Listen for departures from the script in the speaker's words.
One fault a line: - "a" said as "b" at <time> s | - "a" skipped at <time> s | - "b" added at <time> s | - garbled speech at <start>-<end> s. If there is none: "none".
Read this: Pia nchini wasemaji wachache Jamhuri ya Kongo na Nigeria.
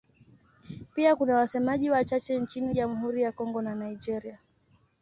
- "nchini" said as "kuna" at 1.1 s
- "nchini" added at 2.4 s